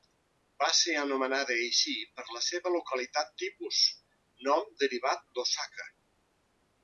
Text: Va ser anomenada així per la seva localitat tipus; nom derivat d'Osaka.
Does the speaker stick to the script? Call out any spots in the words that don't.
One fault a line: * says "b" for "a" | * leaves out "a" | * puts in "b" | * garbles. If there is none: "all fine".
all fine